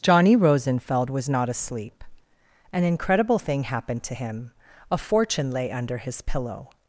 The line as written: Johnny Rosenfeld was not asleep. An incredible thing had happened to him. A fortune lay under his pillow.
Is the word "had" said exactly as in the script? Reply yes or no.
no